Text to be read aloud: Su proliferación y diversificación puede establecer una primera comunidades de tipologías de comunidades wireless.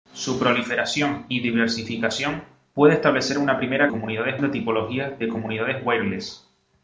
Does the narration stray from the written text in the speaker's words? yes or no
no